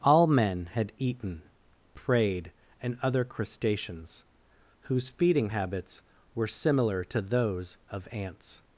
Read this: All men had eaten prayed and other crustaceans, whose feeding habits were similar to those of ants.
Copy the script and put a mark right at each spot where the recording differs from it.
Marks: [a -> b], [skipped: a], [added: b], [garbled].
All men had eaten prayed and other crustaceans, whose feeding habits were similar to those of ants.